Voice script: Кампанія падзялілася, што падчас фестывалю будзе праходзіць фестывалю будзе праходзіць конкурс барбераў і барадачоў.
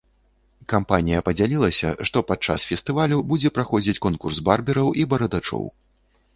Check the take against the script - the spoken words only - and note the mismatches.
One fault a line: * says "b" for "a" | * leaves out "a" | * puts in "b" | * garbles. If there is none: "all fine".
* leaves out "фестывалю будзе праходзіць"